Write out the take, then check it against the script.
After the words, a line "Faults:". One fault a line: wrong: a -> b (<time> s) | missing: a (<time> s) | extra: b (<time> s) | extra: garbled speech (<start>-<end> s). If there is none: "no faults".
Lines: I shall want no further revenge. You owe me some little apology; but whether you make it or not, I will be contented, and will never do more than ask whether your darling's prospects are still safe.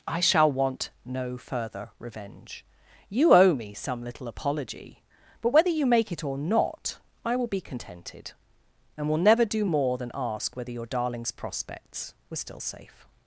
I shall want no further revenge. You owe me some little apology; but whether you make it or not, I will be contented, and will never do more than ask whether your darling's prospects were still safe.
Faults:
wrong: are -> were (12.3 s)